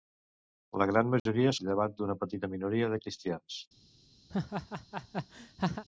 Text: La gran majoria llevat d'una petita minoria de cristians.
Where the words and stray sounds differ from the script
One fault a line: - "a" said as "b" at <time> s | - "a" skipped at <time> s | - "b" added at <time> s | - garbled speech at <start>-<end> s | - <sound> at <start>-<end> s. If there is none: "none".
- dropout at 1.2-1.3 s
- laugh at 4.3-5.8 s